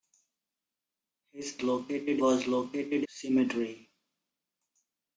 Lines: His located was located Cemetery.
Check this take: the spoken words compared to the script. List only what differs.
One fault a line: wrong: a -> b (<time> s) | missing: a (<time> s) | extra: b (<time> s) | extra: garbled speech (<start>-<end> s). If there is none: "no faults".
no faults